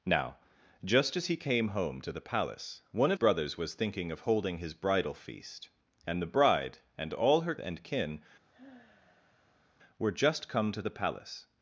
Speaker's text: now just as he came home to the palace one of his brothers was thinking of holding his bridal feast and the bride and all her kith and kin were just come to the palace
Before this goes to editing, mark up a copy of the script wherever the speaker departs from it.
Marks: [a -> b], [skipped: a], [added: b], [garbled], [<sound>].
now just as he came home to the palace one of [skipped: his] brothers was thinking of holding his bridal feast and the bride and all her [skipped: kith] and kin [sigh] were just come to the palace